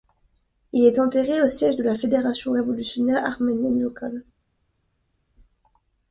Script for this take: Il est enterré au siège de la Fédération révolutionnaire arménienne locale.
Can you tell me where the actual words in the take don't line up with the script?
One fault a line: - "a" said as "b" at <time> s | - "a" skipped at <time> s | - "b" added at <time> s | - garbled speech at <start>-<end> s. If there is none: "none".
none